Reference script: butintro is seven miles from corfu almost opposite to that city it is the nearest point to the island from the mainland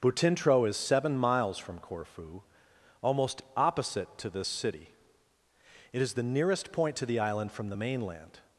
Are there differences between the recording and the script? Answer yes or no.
yes